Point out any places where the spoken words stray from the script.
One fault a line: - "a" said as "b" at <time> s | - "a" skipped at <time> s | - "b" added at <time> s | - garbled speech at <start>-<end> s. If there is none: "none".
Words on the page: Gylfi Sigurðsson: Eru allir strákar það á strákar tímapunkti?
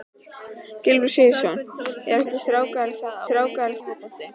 none